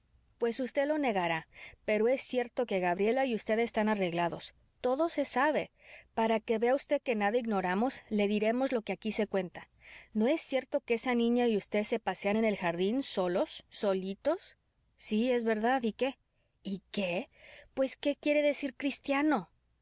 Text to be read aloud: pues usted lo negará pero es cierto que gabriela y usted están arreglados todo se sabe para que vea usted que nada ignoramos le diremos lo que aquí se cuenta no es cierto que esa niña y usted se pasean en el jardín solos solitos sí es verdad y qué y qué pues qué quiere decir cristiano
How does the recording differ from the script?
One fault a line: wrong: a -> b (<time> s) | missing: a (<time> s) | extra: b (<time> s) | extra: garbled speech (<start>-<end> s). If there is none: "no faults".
no faults